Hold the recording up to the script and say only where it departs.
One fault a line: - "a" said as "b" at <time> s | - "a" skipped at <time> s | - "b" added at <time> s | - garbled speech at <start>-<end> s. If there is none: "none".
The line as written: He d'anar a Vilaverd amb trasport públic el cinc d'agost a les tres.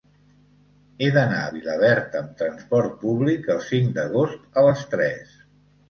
none